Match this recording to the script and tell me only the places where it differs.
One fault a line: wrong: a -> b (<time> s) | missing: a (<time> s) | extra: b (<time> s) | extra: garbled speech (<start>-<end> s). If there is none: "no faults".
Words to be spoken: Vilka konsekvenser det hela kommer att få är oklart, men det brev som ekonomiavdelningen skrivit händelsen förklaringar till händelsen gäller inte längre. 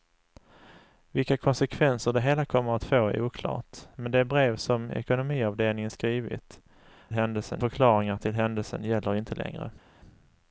no faults